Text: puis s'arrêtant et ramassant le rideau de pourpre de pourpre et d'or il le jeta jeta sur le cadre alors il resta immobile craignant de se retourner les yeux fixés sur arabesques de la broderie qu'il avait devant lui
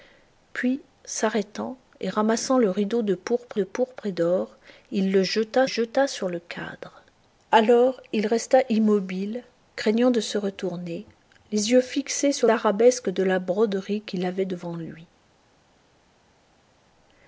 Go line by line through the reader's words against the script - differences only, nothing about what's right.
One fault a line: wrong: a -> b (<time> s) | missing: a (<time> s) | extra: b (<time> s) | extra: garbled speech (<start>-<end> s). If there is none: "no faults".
no faults